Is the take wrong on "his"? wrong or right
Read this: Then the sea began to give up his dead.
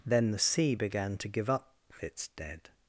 wrong